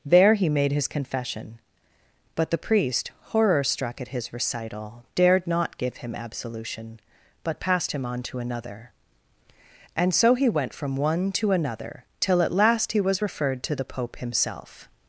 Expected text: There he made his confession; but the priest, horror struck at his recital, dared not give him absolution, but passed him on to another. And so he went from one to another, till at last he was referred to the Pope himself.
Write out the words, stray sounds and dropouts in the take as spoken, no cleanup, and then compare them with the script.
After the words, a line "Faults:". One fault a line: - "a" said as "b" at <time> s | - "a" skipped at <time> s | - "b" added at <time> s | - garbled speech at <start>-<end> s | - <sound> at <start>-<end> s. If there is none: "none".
There he made his confession; but the priest, horror struck at his recital, dared not give him absolution, but passed him on to another. And so he went from one to another, till at last he was referred to the Pope himself.
Faults:
none